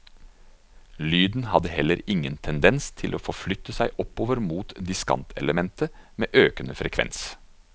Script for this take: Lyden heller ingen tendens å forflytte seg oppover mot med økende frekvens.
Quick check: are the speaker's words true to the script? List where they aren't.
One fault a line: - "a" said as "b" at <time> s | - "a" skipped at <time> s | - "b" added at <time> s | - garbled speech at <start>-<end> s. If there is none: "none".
- "hadde" added at 1.5 s
- "til" added at 3.0 s
- "diskantelementet" added at 4.9 s